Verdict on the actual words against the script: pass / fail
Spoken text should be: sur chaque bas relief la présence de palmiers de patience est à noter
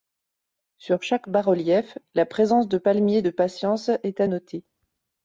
pass